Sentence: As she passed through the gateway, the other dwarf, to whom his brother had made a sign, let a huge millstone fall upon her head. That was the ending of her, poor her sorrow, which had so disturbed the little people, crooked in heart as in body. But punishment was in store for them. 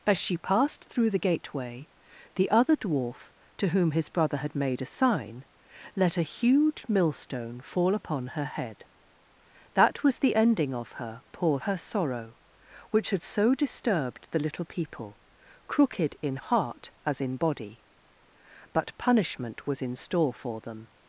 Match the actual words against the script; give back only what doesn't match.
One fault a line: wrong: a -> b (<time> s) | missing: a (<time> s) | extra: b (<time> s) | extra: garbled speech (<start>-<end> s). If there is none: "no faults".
no faults